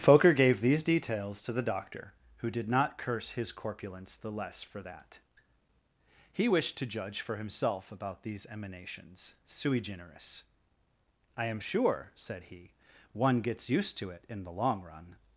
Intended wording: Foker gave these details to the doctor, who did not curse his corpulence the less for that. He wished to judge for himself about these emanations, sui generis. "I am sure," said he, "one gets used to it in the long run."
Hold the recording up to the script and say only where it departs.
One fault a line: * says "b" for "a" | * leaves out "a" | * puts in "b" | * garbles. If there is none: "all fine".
all fine